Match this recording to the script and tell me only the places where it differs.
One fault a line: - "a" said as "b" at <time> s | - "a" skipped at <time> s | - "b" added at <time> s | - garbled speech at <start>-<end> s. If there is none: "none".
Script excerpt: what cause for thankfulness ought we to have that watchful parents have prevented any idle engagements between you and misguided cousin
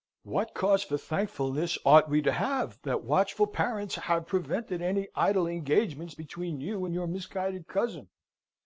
- "your" added at 6.9 s